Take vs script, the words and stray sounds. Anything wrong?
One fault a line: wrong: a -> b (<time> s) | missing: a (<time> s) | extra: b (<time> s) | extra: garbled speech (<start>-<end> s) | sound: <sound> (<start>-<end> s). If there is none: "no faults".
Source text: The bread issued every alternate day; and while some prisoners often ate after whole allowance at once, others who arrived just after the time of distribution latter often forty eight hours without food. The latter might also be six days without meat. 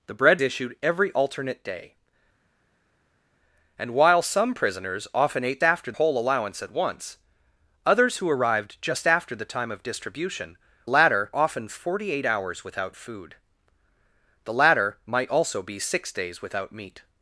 no faults